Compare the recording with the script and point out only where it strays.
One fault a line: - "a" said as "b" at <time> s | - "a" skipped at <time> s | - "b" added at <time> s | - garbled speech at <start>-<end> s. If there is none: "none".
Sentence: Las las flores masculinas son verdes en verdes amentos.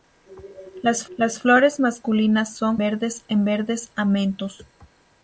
none